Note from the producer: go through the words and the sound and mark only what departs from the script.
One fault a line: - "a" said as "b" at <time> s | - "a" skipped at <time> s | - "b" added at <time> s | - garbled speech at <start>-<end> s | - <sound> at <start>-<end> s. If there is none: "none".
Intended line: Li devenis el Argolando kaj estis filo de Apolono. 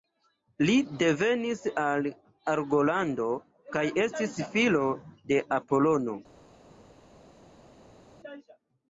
none